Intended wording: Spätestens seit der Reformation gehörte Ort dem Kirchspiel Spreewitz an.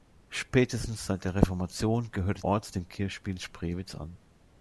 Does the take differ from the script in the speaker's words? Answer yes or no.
no